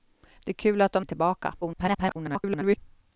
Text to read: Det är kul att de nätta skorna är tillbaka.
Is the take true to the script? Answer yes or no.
no